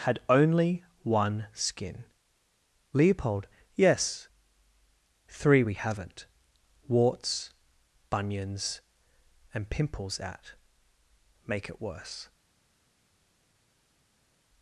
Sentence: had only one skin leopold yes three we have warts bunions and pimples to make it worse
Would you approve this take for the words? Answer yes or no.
no